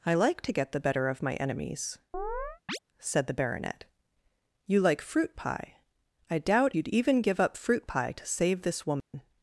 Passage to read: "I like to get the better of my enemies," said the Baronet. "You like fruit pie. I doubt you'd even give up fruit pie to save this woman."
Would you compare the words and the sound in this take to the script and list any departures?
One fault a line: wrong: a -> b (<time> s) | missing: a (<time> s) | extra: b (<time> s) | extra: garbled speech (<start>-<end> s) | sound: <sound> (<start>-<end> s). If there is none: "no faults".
sound: chirp (2.1-2.8 s)
sound: dropout (9.0-9.1 s)